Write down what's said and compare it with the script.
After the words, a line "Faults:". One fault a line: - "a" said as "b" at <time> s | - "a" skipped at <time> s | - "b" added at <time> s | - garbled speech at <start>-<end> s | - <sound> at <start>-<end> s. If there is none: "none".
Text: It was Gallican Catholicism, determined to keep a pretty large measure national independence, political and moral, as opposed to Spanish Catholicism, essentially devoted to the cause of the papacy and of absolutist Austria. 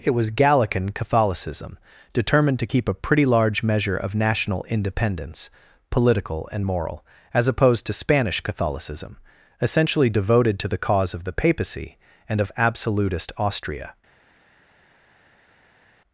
It was Gallican Catholicism, determined to keep a pretty large measure of national independence, political and moral, as opposed to Spanish Catholicism, essentially devoted to the cause of the papacy and of absolutist Austria.
Faults:
- "of" added at 4.0 s